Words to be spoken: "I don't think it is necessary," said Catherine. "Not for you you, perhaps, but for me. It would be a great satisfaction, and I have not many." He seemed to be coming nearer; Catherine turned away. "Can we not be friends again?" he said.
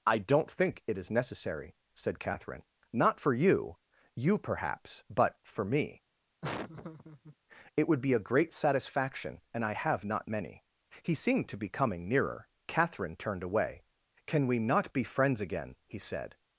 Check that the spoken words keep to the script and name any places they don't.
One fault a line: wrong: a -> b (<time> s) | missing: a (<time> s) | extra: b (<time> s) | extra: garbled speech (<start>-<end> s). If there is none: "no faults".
no faults